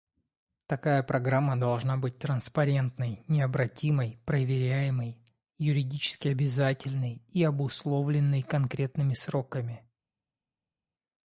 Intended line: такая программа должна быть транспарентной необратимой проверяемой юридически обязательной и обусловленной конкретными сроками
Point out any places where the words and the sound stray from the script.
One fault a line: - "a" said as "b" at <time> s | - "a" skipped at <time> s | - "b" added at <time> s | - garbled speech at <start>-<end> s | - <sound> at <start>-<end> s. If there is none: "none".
none